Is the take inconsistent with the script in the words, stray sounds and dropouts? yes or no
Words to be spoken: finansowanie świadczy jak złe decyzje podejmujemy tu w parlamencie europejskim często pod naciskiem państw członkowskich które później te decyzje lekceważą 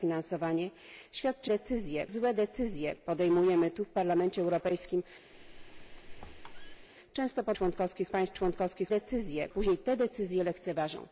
yes